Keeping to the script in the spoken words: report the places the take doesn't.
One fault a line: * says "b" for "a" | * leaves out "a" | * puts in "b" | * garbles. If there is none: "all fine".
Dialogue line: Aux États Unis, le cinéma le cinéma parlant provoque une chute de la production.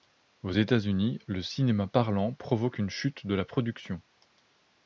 * leaves out "le cinéma"